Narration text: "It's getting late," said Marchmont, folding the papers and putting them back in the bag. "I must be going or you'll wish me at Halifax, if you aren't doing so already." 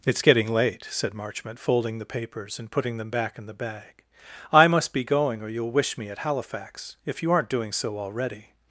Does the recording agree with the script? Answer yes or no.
yes